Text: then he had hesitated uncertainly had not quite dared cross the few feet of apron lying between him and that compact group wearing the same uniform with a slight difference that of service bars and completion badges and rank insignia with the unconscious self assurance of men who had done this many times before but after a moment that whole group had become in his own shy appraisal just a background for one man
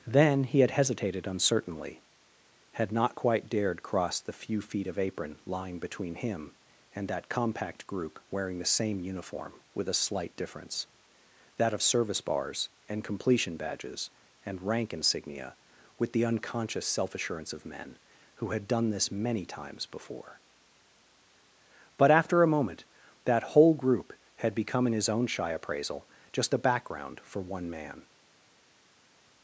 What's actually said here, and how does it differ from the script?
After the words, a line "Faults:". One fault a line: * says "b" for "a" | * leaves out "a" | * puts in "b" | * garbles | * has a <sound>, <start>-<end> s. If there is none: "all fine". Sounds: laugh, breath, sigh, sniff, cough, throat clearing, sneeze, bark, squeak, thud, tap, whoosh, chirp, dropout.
then he had hesitated uncertainly had not quite dared cross the few feet of apron lying between him and that compact group wearing the same uniform with a slight difference that of service bars and completion badges and rank insignia with the unconscious self assurance of men who had done this many times before but after a moment that whole group had become in his own shy appraisal just a background for one man
Faults:
all fine